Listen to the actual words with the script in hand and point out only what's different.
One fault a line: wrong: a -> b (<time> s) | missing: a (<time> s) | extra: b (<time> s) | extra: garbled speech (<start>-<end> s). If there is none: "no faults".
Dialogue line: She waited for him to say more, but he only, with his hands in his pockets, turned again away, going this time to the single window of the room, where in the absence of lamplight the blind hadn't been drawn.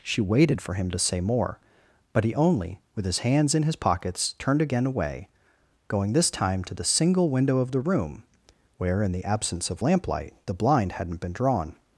no faults